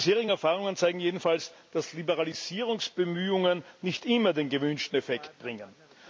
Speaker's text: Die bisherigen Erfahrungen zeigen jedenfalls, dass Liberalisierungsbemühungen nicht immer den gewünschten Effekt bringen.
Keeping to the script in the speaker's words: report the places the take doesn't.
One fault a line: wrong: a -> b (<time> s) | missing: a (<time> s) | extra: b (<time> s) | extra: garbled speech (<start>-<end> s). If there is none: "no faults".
no faults